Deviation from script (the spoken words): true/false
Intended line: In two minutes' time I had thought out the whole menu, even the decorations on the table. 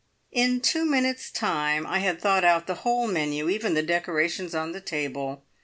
false